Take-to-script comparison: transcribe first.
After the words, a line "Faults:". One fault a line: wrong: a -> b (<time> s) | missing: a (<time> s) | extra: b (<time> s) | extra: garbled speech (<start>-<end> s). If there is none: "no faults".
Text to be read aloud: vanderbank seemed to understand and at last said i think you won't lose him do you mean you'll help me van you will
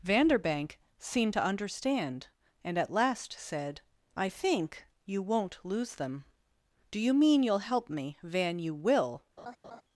vanderbank seemed to understand and at last said i think you won't lose them do you mean you'll help me van you will
Faults:
wrong: him -> them (6.0 s)